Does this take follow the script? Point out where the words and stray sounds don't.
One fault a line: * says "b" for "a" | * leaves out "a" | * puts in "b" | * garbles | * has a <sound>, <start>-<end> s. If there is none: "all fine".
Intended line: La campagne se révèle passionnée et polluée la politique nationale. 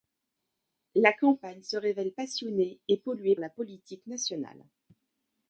all fine